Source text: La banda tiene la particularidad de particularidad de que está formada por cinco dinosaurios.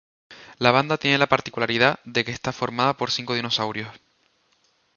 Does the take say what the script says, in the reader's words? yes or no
no